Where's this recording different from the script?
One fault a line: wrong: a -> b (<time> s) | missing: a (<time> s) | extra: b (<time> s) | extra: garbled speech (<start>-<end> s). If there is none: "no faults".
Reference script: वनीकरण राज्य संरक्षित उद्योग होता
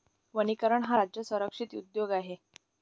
extra: हा (0.8 s)
wrong: होता -> आहे (2.1 s)